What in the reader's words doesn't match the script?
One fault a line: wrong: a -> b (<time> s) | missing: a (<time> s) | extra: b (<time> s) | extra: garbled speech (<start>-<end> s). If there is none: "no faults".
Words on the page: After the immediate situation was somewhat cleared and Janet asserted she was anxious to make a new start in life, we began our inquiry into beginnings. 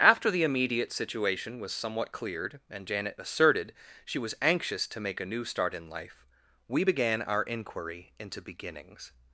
no faults